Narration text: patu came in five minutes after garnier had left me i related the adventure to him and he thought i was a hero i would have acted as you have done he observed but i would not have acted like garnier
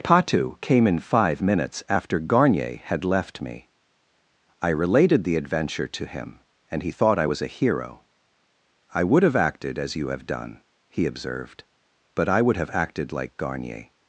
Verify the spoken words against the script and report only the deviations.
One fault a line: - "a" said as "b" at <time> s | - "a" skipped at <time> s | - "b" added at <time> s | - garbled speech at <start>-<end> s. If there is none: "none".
- "not" skipped at 12.6 s